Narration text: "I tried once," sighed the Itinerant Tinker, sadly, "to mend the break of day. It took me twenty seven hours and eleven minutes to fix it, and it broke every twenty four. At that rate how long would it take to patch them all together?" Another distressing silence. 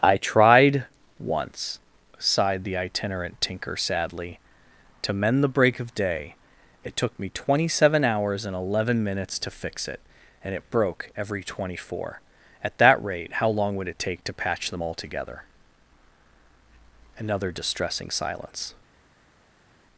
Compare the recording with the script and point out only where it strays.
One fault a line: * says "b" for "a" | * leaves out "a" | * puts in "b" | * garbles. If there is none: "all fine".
all fine